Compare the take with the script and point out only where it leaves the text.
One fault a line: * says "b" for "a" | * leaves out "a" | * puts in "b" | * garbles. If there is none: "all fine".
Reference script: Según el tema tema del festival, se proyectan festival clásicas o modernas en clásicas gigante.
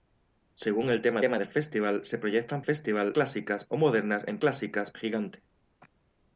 all fine